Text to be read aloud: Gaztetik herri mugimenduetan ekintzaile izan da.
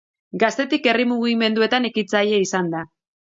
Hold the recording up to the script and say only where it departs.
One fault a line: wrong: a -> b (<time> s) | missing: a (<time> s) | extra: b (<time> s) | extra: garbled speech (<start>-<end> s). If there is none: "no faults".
no faults